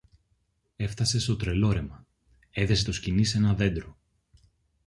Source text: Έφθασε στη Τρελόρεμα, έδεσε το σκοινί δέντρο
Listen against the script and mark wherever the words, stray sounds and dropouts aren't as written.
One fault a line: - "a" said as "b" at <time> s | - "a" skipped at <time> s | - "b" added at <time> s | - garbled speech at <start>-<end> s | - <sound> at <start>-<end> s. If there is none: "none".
- "στη" said as "στο" at 1.2 s
- "σ ένα" added at 3.2 s